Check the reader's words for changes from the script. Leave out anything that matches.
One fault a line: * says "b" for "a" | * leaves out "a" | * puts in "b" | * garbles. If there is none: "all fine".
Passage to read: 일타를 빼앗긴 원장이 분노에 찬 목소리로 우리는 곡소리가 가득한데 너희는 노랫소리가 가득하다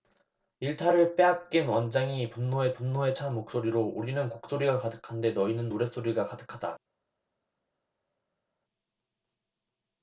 * puts in "분노에"